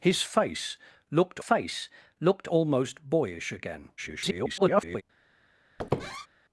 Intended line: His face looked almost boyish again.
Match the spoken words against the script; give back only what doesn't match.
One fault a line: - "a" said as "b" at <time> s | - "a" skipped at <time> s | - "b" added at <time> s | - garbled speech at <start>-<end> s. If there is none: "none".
- "face looked" added at 1.4 s
- garbled speech at 4.0-5.0 s